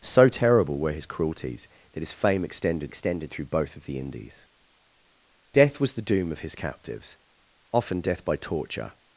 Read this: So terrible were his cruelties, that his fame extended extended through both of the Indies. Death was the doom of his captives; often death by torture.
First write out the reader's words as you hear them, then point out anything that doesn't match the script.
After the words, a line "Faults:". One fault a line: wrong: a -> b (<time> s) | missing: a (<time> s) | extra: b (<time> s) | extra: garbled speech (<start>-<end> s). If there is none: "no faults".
So terrible were his cruelties, that his fame extended extended through both of the Indies. Death was the doom of his captives; often death by torture.
Faults:
no faults